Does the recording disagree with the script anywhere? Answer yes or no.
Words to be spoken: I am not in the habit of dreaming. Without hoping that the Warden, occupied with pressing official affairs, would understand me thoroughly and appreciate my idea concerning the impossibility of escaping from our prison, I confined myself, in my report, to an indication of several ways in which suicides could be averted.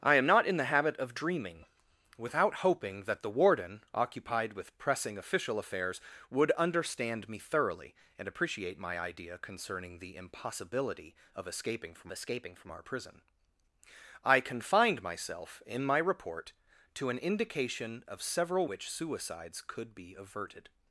yes